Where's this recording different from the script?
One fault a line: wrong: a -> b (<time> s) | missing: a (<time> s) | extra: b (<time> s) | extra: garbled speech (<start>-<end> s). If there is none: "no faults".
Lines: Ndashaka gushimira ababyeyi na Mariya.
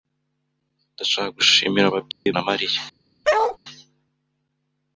no faults